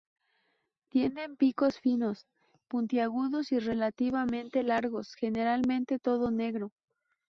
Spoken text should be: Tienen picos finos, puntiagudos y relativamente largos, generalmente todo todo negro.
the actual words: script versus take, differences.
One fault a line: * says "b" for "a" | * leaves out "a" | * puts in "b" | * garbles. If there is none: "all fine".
* leaves out "todo"